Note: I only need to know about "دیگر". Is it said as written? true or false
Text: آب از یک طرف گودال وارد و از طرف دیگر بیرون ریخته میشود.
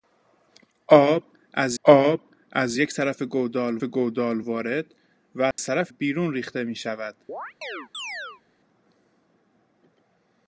false